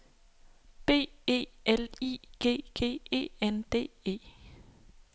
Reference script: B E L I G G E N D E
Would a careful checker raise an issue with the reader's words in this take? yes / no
no